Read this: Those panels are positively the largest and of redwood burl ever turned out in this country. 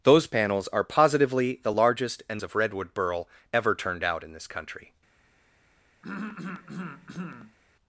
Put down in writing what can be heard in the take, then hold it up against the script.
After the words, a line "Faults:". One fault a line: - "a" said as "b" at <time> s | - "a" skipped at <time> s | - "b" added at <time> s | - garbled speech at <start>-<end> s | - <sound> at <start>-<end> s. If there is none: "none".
Those panels are positively the largest and of redwood burl ever turned out in this country.
Faults:
- throat clearing at 6.0-7.6 s